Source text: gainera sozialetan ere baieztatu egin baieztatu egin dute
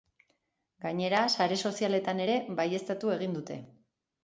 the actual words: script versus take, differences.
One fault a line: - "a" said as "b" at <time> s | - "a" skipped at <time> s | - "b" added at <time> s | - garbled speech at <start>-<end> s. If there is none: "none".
- "sare" added at 1.3 s
- "baieztatu egin" skipped at 3.4 s